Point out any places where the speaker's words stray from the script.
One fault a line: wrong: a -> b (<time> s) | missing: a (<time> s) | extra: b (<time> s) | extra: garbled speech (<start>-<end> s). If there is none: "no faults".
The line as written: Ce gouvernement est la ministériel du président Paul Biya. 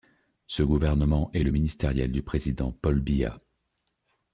wrong: la -> le (1.4 s)